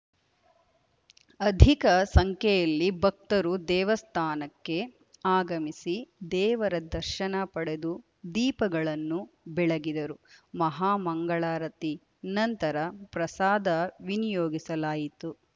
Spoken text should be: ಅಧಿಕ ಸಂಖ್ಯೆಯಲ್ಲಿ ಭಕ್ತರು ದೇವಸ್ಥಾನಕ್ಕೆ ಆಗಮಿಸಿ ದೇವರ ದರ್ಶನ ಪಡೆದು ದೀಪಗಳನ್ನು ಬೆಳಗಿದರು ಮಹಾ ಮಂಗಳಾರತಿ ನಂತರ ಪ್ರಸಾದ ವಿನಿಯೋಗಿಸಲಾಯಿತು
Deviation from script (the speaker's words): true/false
false